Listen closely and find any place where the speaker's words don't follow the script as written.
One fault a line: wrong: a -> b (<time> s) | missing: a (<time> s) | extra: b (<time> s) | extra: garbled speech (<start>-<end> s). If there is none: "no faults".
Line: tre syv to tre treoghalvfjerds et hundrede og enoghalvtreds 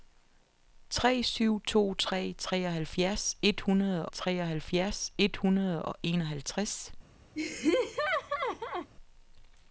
extra: treoghalvfjerds et hundrede (4.1 s)